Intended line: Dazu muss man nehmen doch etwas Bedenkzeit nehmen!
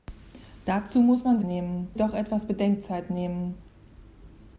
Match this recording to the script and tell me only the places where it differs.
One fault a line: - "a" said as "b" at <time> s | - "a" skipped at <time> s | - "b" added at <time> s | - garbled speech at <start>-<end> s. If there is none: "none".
none